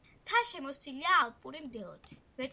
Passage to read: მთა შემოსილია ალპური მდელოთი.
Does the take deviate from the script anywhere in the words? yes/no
no